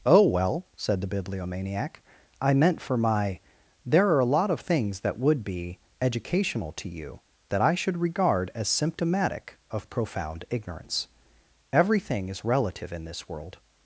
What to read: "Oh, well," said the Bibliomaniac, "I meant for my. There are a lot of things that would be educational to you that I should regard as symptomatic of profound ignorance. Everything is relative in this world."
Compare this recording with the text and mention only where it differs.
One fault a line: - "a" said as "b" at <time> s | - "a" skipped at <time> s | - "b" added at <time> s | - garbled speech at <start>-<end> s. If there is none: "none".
none